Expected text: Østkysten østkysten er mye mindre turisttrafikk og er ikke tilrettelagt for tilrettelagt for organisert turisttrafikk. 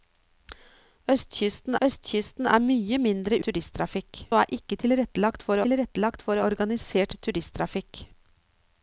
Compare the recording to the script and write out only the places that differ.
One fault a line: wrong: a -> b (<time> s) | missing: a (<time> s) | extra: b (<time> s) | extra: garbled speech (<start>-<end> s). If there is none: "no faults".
no faults